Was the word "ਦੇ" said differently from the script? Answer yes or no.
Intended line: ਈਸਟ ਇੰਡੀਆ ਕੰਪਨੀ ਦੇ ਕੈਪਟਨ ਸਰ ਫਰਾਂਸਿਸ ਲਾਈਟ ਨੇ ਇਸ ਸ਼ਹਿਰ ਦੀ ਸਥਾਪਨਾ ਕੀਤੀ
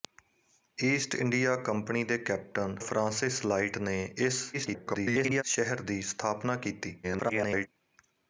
no